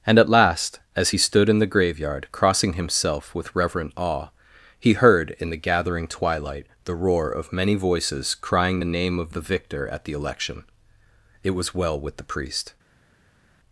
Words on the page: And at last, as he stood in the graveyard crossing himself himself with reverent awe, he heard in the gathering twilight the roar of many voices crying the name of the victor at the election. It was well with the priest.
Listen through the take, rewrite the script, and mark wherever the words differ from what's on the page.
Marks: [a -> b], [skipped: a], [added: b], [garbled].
And at last, as he stood in the graveyard crossing himself [skipped: himself] with reverent awe, he heard in the gathering twilight the roar of many voices crying the name of the victor at the election. It was well with the priest.